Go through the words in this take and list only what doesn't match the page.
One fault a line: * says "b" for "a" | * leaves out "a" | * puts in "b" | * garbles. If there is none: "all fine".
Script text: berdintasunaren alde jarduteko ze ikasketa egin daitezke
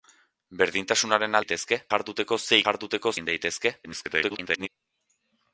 * says "daitezke" for "alde"
* says "jarduteko" for "ikasketa"
* garbles